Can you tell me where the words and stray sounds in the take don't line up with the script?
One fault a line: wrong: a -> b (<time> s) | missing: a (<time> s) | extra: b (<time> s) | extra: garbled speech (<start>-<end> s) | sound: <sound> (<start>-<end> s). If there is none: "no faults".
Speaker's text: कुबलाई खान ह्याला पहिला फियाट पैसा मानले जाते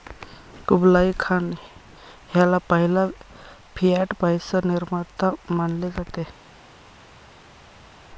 extra: निर्माता (4.7 s)